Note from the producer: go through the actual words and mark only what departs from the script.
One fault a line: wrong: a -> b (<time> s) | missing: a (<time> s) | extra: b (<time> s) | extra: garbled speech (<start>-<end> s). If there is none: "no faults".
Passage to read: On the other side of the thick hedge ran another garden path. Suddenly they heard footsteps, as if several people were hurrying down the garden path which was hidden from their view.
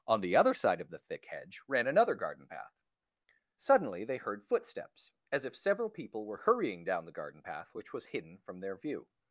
no faults